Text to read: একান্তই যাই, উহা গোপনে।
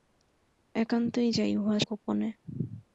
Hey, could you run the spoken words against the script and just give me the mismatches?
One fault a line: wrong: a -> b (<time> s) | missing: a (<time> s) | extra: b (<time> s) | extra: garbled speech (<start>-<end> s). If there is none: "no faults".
no faults